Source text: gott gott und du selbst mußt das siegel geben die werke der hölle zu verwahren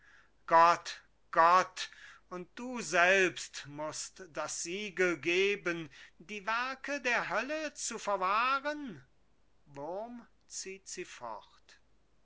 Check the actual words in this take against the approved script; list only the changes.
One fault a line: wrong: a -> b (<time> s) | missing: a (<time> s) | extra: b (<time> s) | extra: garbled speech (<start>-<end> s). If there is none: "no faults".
no faults